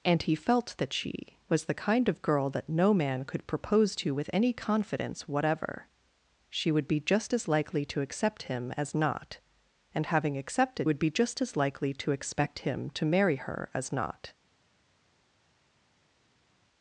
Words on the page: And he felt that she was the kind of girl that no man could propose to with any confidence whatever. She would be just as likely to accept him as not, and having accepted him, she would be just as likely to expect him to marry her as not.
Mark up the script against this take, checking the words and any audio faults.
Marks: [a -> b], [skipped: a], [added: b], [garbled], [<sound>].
And he felt that she was the kind of girl that no man could propose to with any confidence whatever. She would be just as likely to accept him as not, and having accepted [skipped: him, she] would be just as likely to expect him to marry her as not.